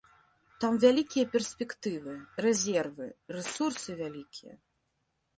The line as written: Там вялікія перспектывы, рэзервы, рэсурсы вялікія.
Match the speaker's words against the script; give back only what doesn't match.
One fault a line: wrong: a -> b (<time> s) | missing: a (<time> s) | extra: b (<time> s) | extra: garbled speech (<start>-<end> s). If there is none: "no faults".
no faults